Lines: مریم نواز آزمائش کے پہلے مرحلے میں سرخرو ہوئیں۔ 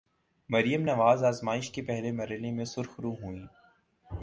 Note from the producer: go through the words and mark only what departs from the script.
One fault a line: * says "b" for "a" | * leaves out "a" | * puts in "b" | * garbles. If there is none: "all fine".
all fine